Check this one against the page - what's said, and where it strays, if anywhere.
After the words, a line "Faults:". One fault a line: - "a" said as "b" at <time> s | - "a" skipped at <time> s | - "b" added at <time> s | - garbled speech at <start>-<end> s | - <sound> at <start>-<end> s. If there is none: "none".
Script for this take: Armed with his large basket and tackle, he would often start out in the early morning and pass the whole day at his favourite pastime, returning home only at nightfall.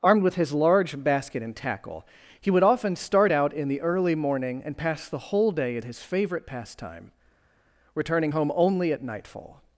Armed with his large basket and tackle, he would often start out in the early morning and pass the whole day at his favourite pastime, returning home only at nightfall.
Faults:
none